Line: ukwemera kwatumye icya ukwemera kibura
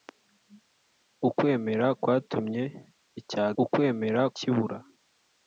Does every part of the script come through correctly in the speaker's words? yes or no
yes